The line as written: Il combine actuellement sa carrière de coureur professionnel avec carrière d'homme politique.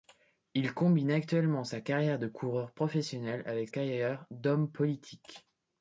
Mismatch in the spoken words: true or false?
false